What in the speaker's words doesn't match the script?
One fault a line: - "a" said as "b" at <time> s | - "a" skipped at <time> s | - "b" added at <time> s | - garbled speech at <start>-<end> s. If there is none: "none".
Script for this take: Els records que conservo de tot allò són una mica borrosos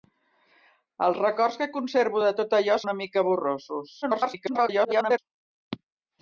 - "són" skipped at 2.8 s
- garbled speech at 4.0-5.2 s